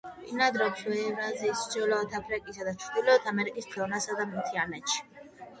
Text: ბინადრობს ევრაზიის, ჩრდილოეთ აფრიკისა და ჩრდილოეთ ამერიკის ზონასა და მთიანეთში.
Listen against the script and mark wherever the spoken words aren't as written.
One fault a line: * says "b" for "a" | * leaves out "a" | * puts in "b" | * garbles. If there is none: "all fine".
all fine